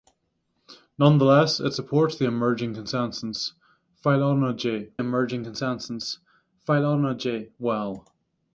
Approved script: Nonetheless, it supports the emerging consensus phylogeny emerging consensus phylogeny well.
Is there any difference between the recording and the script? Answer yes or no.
no